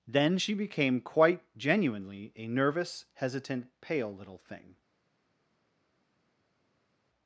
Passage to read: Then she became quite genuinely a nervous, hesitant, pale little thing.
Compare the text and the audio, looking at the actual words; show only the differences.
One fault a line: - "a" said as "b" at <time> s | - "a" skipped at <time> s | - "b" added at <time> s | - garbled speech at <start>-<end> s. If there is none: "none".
none